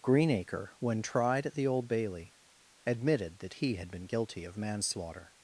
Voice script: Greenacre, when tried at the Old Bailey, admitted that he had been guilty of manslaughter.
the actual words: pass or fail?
pass